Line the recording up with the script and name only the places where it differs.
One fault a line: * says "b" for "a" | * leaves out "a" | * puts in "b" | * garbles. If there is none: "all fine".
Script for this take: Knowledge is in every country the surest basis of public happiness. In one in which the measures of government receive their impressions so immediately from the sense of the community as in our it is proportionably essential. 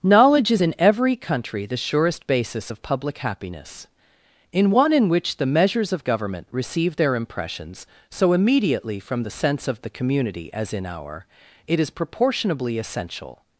all fine